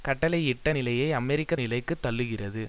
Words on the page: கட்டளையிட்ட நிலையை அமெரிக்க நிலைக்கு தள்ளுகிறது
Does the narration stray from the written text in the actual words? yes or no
no